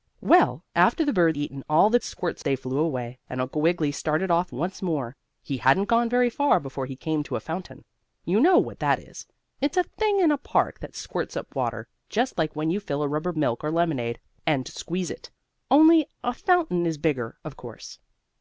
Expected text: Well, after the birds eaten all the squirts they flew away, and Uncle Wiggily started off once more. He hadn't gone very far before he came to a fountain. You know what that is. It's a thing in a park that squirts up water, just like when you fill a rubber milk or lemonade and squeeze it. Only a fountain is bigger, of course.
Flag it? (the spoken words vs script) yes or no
no